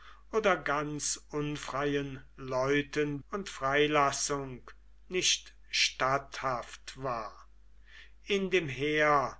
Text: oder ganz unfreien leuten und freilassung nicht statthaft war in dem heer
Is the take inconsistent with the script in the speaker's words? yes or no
no